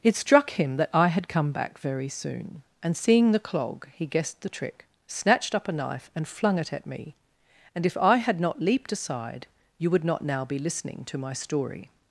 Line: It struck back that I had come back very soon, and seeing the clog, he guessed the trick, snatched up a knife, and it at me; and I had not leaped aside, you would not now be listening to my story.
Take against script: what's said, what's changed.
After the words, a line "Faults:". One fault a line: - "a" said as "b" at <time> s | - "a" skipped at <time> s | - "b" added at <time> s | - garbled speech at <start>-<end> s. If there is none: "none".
It struck him that I had come back very soon, and seeing the clog, he guessed the trick, snatched up a knife, and flung it at me; and if I had not leaped aside, you would not now be listening to my story.
Faults:
- "back" said as "him" at 0.5 s
- "flung" added at 6.3 s
- "if" added at 7.8 s